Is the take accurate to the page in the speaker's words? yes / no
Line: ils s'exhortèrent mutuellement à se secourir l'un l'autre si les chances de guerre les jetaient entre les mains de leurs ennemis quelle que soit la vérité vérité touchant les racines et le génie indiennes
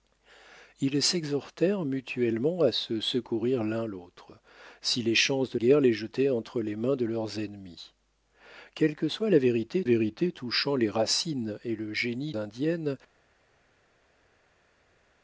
yes